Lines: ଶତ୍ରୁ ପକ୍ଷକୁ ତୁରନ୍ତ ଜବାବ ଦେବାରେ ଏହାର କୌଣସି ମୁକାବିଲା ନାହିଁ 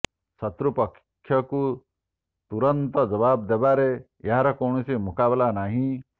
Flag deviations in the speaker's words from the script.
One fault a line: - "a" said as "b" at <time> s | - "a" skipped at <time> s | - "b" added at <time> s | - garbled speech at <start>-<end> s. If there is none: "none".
none